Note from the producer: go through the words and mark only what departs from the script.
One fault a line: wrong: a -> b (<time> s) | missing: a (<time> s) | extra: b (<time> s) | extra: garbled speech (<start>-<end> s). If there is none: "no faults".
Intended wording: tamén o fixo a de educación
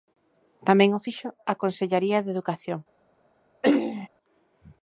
extra: consellaría (1.6 s)